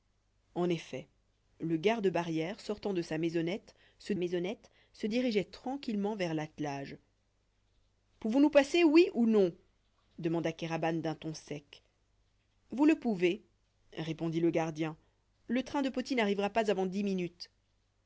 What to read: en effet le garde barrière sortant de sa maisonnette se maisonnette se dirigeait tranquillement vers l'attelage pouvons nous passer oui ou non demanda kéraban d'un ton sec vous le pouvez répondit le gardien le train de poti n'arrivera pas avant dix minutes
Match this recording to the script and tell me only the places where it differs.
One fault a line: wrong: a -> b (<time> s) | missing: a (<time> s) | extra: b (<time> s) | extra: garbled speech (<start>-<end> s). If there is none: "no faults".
no faults